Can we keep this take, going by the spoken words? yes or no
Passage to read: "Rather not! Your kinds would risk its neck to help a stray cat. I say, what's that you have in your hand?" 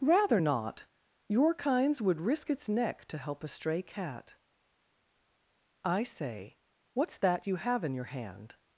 yes